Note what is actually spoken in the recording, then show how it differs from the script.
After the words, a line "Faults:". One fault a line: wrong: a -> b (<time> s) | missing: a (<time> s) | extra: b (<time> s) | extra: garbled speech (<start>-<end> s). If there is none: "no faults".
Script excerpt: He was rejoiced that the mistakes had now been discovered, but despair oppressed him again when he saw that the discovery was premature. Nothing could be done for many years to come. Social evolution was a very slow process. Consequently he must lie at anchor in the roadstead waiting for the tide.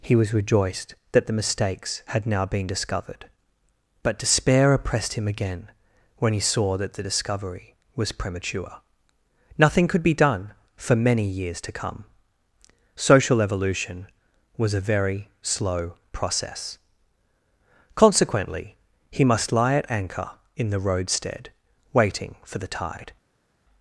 He was rejoiced that the mistakes had now been discovered, but despair oppressed him again when he saw that the discovery was premature. Nothing could be done for many years to come. Social evolution was a very slow process. Consequently he must lie at anchor in the roadstead waiting for the tide.
Faults:
no faults